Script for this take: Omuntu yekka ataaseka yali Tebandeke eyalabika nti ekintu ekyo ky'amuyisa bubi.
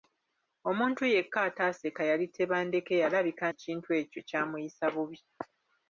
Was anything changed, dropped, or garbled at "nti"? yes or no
yes